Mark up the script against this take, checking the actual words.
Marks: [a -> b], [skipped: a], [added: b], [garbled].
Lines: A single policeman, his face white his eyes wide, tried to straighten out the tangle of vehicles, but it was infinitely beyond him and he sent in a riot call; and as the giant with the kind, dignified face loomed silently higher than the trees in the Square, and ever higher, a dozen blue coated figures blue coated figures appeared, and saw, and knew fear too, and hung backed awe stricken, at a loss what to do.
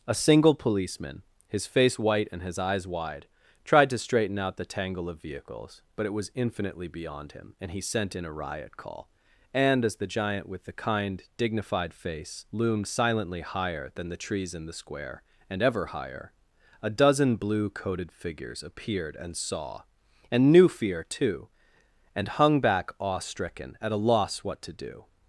A single policeman, his face white [added: and] his eyes wide, tried to straighten out the tangle of vehicles, but it was infinitely beyond him and he sent in a riot call; and as the giant with the kind, dignified face loomed silently higher than the trees in the Square, and ever higher, a dozen blue coated figures [skipped: blue coated figures] appeared, and saw, and knew fear too, and hung [backed -> back] awe stricken, at a loss what to do.